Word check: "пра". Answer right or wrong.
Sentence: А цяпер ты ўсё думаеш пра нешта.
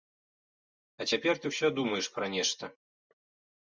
right